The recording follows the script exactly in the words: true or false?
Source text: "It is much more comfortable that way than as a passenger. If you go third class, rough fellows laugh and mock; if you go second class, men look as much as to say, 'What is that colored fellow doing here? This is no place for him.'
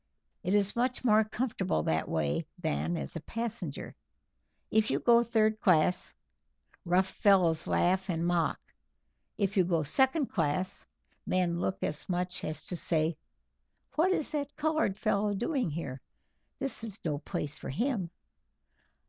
true